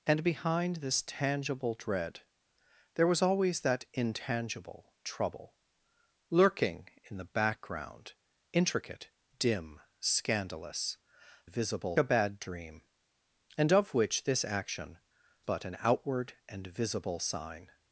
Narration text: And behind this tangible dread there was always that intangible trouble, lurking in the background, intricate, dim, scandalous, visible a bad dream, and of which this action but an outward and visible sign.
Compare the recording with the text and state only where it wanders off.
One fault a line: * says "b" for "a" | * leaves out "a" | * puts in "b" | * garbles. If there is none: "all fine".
all fine